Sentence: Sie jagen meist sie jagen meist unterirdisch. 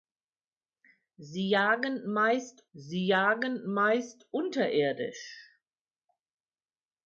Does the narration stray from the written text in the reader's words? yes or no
no